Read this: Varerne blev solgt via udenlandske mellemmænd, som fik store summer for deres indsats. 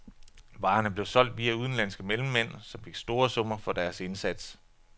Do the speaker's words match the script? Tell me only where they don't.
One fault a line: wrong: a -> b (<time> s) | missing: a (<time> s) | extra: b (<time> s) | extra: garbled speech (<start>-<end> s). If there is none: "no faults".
no faults